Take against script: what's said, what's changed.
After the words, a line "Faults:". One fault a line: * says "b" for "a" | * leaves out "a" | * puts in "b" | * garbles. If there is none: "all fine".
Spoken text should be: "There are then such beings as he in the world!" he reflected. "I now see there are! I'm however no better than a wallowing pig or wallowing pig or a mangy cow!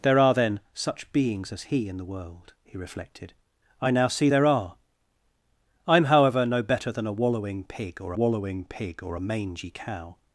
"There are then such beings as he in the world!" he reflected. "I now see there are! I'm however no better than a wallowing pig or wallowing pig or a mangy cow!
Faults:
all fine